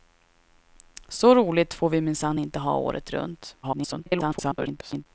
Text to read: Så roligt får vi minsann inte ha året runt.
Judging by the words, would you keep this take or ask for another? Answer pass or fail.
fail